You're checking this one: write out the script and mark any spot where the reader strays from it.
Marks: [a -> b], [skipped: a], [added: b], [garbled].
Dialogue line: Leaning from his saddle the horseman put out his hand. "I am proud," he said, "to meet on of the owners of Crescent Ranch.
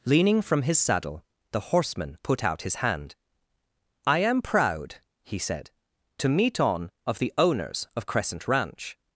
Leaning from his saddle the horseman put out his hand. "I am proud," he said, "to meet on of the owners of Crescent Ranch.